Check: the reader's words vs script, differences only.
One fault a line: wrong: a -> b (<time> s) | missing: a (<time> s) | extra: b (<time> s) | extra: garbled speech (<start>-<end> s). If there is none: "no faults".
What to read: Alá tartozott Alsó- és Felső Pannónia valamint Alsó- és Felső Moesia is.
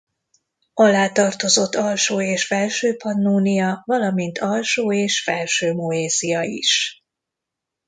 no faults